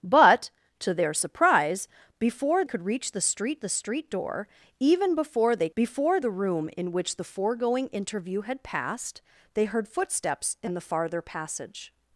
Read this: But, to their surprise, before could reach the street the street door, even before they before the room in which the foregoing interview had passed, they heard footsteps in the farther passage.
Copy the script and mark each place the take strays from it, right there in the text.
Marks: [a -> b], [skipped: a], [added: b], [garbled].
But, to their surprise, before could reach the street the street door, even before they before the room in which the foregoing interview had passed, they heard footsteps in the farther passage.